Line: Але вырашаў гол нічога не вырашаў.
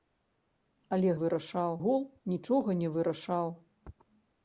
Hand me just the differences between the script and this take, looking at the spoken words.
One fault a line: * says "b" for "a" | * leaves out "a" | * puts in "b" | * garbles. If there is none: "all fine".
all fine